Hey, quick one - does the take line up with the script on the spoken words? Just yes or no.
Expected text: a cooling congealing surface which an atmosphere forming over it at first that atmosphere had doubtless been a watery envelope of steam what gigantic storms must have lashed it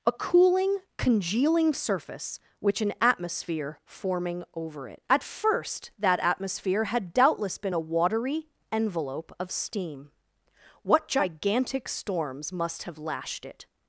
yes